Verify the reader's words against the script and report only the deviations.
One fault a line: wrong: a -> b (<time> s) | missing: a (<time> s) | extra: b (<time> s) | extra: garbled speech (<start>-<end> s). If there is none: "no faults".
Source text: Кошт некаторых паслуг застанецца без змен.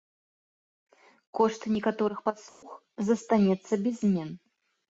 no faults